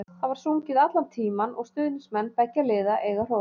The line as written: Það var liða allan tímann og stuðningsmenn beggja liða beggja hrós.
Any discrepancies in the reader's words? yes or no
yes